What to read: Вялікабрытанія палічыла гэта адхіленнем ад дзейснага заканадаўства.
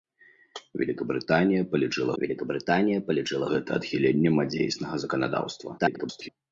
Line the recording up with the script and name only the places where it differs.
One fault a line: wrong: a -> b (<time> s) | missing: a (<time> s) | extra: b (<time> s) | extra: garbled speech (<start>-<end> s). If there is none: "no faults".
extra: вялікабрытанія палічыла (2.2 s)
extra: garbled speech (5.8-6.3 s)